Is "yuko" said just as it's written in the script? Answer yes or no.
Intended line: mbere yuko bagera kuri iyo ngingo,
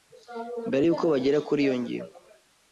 yes